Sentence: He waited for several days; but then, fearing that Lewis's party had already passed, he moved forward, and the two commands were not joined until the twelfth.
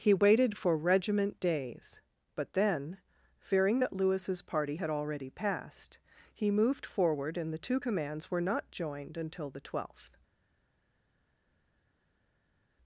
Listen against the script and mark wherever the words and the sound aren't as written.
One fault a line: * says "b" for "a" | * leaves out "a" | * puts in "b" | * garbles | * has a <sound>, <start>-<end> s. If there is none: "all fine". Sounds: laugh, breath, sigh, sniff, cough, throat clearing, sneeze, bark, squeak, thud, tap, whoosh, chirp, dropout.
* says "regiment" for "several"